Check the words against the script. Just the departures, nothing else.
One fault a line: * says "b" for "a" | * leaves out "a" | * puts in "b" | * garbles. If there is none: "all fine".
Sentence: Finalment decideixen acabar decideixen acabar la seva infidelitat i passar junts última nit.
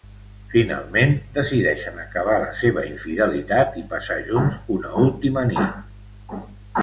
* leaves out "decideixen acabar"
* puts in "una"